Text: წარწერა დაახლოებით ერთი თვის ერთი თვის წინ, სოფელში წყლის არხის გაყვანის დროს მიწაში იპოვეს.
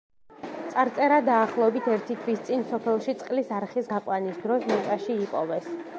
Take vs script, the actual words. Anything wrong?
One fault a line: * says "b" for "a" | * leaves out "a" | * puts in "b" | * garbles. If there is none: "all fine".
* leaves out "ერთი თვის"